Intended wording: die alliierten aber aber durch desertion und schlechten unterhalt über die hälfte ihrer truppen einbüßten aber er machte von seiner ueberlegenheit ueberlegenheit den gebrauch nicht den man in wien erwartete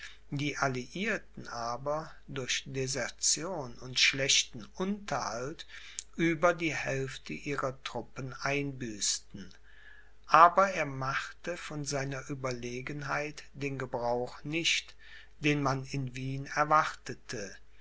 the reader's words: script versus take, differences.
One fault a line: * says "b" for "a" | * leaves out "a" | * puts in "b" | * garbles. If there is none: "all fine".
* leaves out "aber"
* leaves out "ueberlegenheit"